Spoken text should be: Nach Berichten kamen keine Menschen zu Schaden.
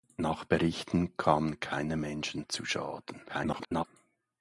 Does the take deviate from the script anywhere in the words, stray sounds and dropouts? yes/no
yes